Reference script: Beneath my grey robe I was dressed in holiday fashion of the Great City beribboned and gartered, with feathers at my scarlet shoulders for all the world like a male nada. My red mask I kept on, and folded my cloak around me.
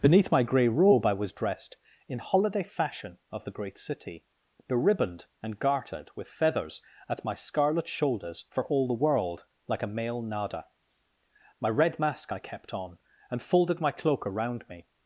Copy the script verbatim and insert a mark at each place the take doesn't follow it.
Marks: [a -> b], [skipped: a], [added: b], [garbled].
Beneath my grey robe I was dressed in holiday fashion of the Great City beribboned and gartered, with feathers at my scarlet shoulders for all the world like a male nada. My red mask I kept on, and folded my cloak around me.